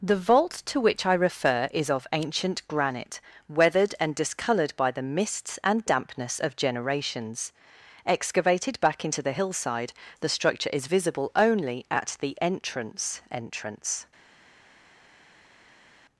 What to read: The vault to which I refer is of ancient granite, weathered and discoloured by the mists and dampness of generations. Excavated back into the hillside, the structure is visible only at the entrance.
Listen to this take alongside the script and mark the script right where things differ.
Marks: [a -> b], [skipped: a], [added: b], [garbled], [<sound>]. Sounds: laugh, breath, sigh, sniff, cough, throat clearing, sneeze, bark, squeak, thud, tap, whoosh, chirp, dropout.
The vault to which I refer is of ancient granite, weathered and discoloured by the mists and dampness of generations. Excavated back into the hillside, the structure is visible only at the entrance. [added: entrance]